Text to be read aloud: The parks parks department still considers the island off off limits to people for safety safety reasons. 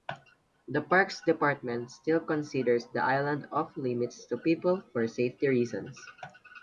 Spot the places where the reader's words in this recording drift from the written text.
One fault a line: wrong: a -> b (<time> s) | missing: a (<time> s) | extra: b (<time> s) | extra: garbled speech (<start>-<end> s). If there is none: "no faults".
missing: parks (1.2 s)
missing: off (3.8 s)
missing: safety (5.5 s)